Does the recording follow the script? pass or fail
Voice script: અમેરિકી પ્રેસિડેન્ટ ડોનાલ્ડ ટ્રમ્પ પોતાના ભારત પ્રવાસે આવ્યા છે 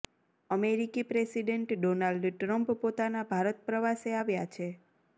pass